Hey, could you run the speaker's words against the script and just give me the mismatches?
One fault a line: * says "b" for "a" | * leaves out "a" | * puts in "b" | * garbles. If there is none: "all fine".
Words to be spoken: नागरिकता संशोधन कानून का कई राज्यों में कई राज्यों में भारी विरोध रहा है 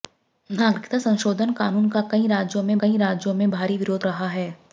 all fine